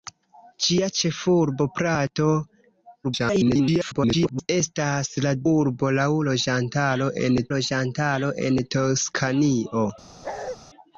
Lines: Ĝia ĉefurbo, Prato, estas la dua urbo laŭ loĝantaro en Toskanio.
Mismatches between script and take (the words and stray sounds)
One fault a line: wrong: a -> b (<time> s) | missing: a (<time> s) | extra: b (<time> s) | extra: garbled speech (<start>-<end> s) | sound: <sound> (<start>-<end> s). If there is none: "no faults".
extra: garbled speech (3.0-4.5 s)
missing: dua (5.4 s)
extra: loĝantaro en (7.6 s)
sound: bark (10.2-10.6 s)